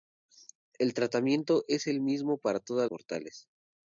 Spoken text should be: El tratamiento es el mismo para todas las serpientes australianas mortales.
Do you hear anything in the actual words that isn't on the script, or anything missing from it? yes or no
yes